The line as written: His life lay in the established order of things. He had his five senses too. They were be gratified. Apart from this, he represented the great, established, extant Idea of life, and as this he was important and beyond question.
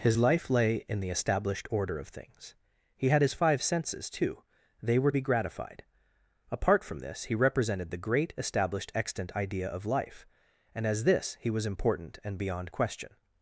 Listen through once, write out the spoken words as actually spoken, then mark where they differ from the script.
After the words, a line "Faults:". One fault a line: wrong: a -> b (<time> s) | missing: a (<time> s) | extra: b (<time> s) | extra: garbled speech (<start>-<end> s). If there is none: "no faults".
His life lay in the established order of things. He had his five senses too. They were be gratified. Apart from this, he represented the great, established, extant Idea of life, and as this he was important and beyond question.
Faults:
no faults